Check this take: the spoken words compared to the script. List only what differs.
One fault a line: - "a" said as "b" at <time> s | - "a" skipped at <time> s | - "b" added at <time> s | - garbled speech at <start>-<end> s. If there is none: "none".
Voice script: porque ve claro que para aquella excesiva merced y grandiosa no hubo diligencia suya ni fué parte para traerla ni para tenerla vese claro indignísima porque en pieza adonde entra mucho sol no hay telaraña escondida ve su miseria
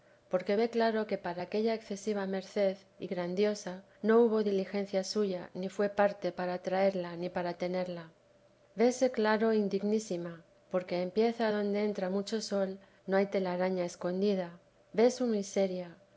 none